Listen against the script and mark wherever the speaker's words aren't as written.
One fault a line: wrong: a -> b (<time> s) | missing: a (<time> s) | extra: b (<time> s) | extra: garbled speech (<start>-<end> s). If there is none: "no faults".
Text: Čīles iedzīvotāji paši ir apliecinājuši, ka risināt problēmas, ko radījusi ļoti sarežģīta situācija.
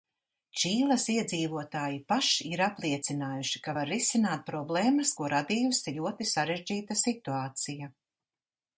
extra: var (3.8 s)